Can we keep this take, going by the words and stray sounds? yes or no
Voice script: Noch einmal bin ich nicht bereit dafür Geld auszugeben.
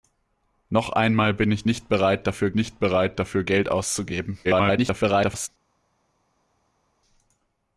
no